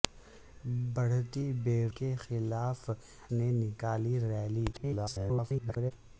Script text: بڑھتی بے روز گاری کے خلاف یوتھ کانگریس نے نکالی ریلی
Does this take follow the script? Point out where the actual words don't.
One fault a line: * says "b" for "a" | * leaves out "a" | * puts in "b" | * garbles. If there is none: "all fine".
* leaves out "روز گاری"
* leaves out "یوتھ کانگریس"
* garbles